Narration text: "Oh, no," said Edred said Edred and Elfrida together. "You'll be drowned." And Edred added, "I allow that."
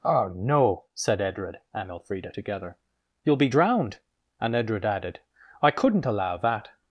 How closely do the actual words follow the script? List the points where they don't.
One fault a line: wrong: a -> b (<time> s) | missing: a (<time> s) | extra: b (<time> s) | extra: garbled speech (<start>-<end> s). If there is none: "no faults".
missing: said Edred (1.6 s)
extra: couldn't (5.7 s)